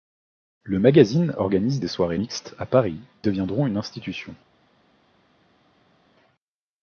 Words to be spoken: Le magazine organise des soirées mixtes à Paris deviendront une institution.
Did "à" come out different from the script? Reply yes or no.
no